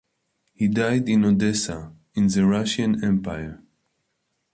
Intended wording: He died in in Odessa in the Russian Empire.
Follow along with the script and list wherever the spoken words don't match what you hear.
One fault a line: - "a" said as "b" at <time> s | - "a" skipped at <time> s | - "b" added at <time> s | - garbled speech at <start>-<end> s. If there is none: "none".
- "in" skipped at 1.2 s